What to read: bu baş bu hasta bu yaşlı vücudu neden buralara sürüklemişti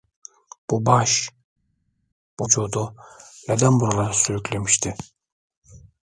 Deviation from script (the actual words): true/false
true